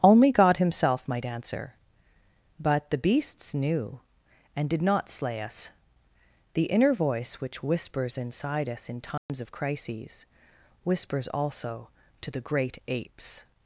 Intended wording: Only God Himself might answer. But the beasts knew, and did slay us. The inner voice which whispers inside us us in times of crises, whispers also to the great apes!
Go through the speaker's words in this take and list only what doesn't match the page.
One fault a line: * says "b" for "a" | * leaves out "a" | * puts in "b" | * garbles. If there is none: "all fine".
* puts in "not"
* leaves out "us"